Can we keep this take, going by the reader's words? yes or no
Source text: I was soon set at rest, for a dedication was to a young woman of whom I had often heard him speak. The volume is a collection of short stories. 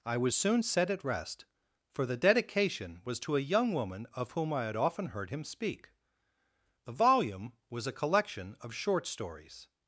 no